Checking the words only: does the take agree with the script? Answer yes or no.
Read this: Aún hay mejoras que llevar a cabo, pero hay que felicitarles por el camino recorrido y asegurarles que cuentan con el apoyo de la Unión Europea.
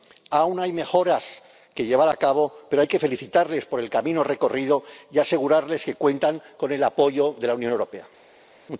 yes